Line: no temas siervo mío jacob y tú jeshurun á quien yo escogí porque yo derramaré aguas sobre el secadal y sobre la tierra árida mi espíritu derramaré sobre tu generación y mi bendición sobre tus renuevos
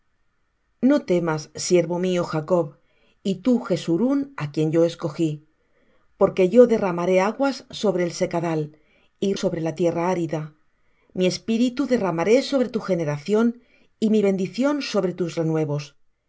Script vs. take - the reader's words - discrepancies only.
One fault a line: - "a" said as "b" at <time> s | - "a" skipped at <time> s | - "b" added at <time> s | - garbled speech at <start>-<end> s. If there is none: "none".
none